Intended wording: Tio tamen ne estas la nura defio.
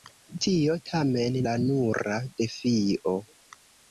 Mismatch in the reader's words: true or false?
true